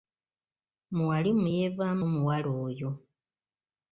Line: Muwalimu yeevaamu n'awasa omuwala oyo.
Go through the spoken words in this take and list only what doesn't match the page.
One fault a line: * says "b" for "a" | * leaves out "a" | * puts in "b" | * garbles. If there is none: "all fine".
* leaves out "n'awasa"